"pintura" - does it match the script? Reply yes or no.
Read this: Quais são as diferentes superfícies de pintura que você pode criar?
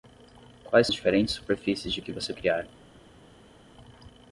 no